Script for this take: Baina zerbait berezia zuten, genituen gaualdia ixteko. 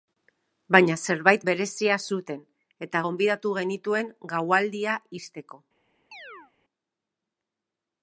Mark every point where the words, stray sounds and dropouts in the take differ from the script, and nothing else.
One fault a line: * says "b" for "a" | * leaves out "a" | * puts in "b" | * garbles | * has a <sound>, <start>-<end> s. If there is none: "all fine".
* puts in "eta gonbidatu"
* has a chirp, 6.1-6.5 s